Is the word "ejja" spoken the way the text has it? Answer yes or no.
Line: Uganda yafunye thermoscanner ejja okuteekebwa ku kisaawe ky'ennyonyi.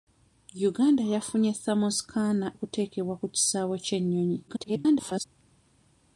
no